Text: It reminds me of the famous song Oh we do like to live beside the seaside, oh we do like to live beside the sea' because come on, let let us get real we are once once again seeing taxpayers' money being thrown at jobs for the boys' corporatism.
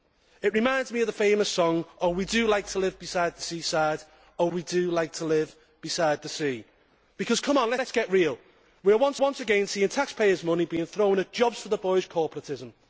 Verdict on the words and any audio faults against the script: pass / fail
pass